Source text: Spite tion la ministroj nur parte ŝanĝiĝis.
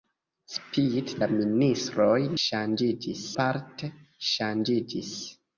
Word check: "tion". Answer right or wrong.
wrong